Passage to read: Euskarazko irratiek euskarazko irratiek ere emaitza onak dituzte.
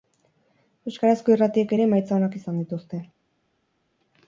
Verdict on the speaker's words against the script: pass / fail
fail